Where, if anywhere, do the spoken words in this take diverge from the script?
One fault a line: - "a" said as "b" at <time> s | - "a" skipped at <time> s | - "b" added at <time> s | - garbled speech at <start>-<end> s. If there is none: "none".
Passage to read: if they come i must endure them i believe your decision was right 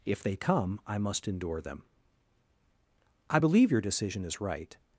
- "was" said as "is" at 4.2 s